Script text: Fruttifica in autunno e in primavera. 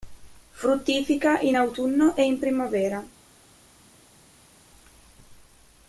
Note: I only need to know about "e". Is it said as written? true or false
true